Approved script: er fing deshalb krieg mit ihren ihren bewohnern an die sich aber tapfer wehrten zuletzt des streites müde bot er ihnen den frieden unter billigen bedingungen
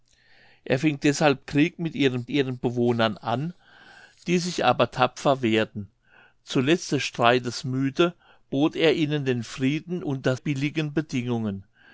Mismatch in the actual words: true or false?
false